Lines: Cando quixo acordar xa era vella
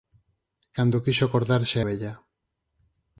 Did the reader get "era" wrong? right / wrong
wrong